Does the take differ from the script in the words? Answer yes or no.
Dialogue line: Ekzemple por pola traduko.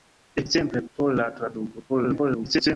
yes